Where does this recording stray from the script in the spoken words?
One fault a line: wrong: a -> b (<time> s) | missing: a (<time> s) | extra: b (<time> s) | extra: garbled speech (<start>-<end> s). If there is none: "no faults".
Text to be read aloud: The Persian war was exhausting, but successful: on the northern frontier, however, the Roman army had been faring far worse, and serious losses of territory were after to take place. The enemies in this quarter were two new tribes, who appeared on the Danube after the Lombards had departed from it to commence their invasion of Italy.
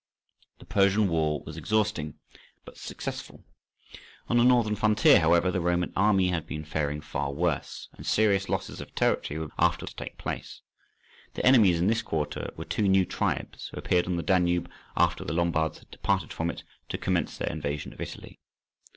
no faults